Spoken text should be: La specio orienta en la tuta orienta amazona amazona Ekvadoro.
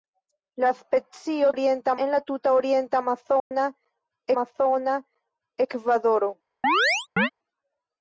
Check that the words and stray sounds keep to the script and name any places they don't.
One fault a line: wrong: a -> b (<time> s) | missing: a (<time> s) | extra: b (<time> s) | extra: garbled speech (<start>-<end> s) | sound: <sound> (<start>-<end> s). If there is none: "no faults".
sound: dropout (3.4-3.5 s)
sound: chirp (6.6-7.3 s)